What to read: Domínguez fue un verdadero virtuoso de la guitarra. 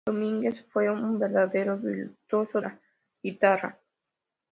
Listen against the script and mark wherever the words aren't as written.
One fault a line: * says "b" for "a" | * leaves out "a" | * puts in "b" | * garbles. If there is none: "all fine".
* leaves out "de"